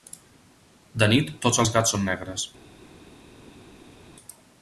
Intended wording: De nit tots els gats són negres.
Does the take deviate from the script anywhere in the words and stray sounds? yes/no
no